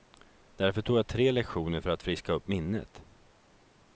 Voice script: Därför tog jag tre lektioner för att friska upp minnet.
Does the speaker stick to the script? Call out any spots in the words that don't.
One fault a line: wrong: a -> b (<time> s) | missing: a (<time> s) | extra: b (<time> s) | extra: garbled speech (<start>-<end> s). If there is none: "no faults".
no faults